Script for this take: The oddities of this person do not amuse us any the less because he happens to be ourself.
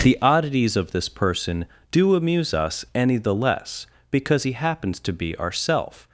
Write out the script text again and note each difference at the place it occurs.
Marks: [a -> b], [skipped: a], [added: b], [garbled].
The oddities of this person do [skipped: not] amuse us any the less because he happens to be ourself.